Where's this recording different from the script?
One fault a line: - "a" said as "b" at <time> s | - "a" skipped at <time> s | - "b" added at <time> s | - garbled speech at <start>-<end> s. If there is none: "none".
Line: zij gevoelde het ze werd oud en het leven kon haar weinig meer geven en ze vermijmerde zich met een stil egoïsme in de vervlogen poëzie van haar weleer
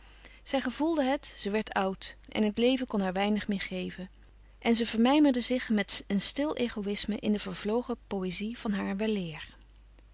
none